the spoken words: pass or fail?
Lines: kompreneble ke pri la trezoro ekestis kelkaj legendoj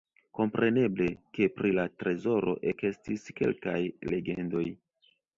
pass